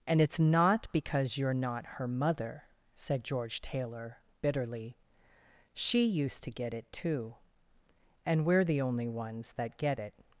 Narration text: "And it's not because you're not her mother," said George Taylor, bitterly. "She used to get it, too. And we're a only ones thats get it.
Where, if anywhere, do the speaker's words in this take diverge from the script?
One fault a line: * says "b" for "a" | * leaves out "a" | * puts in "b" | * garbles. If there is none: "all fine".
* says "the" for "a"
* says "that" for "thats"